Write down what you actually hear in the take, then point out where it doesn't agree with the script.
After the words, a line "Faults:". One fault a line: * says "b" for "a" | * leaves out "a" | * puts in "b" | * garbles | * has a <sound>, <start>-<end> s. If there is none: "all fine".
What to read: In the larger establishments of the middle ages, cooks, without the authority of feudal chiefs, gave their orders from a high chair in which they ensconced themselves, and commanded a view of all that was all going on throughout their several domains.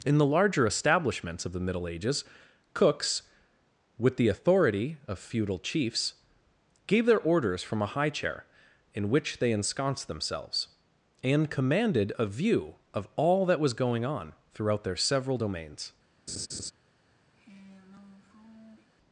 In the larger establishments of the middle ages, cooks, with the authority of feudal chiefs, gave their orders from a high chair in which they ensconced themselves, and commanded a view of all that was going on throughout their several domains.
Faults:
* says "with" for "without"
* leaves out "all"
* has a laugh, 16.3-16.7 s
* has a sigh, 17.3-18.9 s